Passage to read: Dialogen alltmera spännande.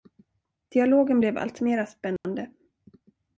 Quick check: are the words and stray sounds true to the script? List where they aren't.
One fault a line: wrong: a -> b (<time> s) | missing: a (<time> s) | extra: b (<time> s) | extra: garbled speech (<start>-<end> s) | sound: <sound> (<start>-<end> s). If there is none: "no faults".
extra: blev (1.2 s)
sound: dropout (2.2-2.2 s)